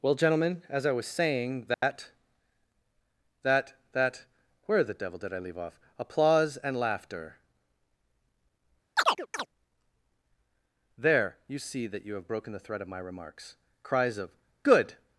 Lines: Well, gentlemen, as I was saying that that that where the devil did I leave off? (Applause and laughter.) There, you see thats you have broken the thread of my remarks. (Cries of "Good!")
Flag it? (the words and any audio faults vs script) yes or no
yes